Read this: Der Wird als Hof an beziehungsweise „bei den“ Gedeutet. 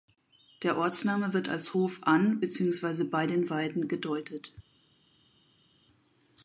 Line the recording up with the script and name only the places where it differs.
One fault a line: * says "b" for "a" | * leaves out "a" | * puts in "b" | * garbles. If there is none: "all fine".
* puts in "Ortsname"
* puts in "Weiden"